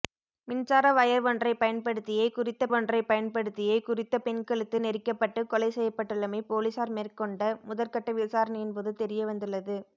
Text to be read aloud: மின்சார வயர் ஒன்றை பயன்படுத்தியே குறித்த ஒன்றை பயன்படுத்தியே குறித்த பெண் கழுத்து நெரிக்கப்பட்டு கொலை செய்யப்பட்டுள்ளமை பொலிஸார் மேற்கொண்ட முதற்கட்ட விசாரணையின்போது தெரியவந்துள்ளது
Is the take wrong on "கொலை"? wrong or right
right